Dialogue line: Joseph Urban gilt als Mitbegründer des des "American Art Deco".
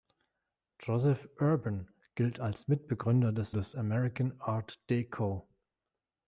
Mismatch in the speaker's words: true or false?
false